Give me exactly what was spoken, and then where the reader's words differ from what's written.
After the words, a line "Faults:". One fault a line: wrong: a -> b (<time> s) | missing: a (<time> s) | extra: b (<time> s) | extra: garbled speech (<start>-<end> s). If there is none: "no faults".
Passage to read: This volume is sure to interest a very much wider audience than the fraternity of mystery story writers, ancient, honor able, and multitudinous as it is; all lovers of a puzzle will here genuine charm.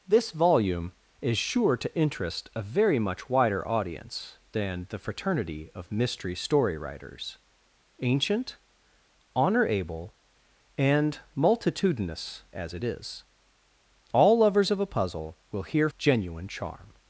This volume is sure to interest a very much wider audience than the fraternity of mystery story writers, ancient, honor able, and multitudinous as it is; all lovers of a puzzle will here genuine charm.
Faults:
no faults